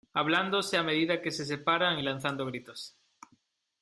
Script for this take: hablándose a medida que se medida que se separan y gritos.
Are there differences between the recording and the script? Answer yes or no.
yes